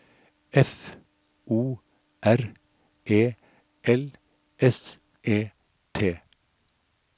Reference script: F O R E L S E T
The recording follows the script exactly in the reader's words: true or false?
true